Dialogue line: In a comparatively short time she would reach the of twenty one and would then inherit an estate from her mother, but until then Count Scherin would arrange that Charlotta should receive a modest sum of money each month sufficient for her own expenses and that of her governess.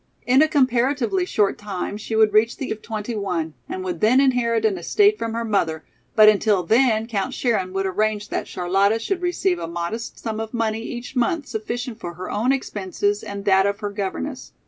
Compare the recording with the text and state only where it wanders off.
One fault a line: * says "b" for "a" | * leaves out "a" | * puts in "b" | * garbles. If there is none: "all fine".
all fine